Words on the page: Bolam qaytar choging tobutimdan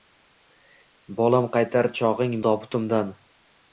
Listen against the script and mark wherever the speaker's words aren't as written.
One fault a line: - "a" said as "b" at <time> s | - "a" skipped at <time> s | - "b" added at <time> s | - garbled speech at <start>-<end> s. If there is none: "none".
none